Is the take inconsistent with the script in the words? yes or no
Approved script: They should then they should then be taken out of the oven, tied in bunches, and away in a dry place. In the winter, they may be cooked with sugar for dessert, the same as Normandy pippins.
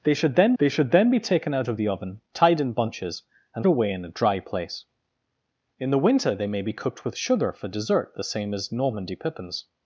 no